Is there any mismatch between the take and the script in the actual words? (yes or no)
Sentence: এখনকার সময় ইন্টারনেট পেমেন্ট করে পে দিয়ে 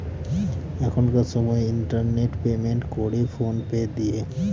yes